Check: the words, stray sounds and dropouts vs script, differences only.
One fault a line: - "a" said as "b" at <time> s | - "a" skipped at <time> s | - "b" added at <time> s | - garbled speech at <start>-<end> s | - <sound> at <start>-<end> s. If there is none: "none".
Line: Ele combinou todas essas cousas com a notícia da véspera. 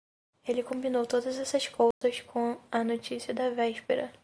- dropout at 1.9-2.0 s